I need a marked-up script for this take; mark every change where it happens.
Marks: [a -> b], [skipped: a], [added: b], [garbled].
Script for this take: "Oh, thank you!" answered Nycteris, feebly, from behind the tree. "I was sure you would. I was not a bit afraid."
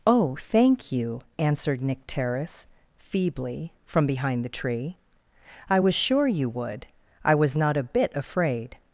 "Oh, thank you!" answered Nycteris, feebly, from behind the tree. "I was sure you would. I was not a bit afraid."